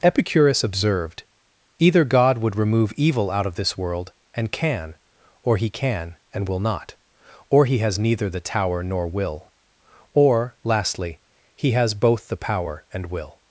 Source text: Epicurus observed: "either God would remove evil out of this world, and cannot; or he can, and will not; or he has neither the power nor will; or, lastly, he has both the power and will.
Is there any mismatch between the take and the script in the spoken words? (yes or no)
yes